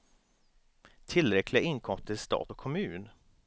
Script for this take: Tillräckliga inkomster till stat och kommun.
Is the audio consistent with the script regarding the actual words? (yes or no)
yes